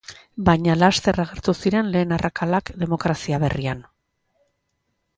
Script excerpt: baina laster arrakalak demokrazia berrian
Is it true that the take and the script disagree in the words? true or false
true